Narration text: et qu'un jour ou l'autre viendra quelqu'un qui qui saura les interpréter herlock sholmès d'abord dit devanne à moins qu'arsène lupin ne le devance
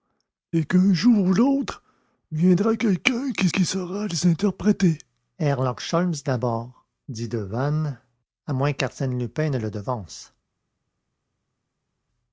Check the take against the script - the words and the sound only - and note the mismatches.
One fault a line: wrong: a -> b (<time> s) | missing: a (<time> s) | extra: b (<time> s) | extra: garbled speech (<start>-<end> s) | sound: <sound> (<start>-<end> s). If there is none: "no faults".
no faults